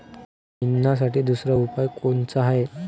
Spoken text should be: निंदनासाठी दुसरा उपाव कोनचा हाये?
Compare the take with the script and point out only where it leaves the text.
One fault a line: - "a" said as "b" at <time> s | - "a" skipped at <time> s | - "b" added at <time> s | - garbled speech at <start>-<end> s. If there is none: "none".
none